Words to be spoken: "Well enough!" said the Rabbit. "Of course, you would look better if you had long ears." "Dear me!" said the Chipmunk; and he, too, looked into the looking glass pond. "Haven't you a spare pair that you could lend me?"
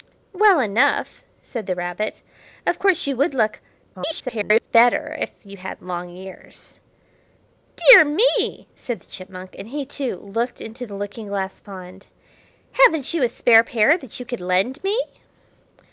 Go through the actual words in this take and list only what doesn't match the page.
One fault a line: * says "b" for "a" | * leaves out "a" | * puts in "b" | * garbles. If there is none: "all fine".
* garbles